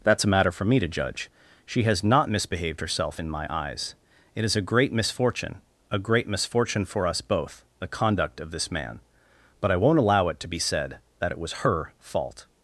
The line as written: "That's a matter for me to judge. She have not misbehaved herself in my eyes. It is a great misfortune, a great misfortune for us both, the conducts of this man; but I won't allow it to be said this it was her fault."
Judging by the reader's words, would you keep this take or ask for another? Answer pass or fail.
fail